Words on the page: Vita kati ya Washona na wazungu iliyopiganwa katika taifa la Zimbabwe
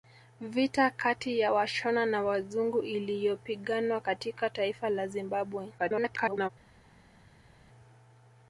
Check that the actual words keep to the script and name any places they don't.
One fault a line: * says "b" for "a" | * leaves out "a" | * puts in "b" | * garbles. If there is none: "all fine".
* garbles